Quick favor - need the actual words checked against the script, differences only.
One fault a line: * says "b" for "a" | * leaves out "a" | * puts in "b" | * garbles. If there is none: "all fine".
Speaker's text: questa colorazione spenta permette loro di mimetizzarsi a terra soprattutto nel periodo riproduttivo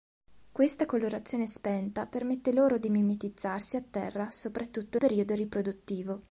* leaves out "nel"